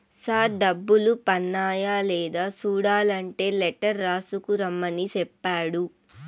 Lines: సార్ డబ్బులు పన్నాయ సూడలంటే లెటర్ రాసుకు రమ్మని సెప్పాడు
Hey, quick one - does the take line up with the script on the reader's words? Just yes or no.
no